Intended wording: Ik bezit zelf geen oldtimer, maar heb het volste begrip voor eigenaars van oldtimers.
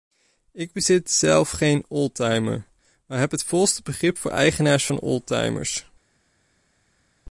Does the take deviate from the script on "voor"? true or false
false